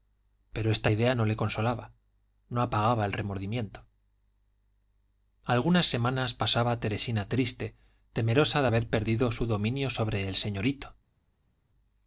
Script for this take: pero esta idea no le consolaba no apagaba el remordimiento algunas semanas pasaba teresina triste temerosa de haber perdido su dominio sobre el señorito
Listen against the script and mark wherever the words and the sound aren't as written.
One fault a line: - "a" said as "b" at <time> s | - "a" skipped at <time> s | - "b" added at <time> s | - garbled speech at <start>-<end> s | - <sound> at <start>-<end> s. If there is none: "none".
none